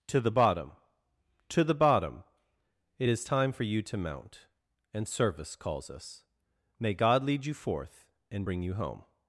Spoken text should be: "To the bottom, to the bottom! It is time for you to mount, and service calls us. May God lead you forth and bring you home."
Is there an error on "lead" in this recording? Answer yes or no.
no